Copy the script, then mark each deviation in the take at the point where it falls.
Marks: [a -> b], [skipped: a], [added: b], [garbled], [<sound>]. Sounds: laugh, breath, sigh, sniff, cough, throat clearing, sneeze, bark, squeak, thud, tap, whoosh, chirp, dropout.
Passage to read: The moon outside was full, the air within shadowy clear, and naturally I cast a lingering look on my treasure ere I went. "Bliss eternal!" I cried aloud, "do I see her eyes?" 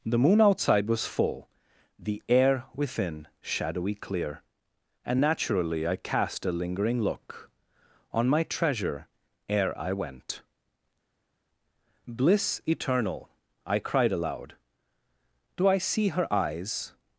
The moon outside was full, the air within shadowy clear, and naturally I cast a lingering look on my treasure ere I went. "Bliss eternal!" I cried aloud, "do I see her eyes?"